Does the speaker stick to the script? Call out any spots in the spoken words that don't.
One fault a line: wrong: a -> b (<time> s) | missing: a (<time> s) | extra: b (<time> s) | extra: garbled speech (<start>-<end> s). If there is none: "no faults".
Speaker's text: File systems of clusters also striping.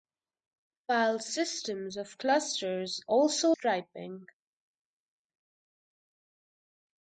no faults